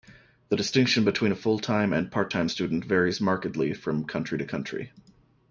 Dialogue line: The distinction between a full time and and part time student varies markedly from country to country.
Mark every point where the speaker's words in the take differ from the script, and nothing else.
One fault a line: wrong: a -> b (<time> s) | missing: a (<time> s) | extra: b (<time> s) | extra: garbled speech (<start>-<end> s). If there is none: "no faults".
missing: and (2.1 s)